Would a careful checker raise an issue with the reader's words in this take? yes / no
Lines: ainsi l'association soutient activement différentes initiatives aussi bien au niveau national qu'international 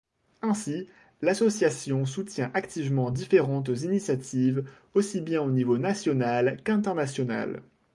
no